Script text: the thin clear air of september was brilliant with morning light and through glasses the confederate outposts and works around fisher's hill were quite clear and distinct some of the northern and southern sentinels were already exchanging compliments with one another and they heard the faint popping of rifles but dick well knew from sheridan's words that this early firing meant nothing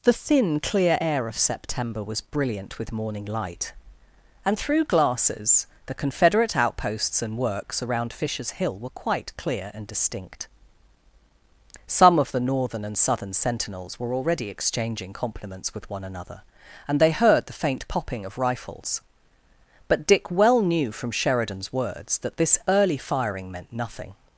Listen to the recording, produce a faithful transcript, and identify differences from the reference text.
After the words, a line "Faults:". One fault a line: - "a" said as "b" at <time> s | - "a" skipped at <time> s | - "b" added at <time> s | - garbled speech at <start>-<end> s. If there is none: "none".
the thin clear air of september was brilliant with morning light and through glasses the confederate outposts and works around fisher's hill were quite clear and distinct some of the northern and southern sentinels were already exchanging compliments with one another and they heard the faint popping of rifles but dick well knew from sheridan's words that this early firing meant nothing
Faults:
none